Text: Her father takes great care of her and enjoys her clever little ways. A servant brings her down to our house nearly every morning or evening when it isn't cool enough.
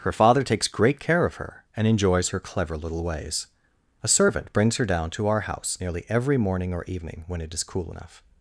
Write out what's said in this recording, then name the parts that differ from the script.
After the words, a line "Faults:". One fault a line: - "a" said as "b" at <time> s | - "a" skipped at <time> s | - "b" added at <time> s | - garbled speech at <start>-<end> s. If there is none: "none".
Her father takes great care of her and enjoys her clever little ways. A servant brings her down to our house nearly every morning or evening when it is cool enough.
Faults:
- "isn't" said as "is" at 7.5 s